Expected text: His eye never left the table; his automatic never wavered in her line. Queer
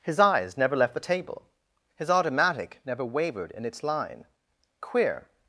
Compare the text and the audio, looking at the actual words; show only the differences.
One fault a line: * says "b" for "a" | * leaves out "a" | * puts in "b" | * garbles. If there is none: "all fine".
* says "eyes" for "eye"
* says "its" for "her"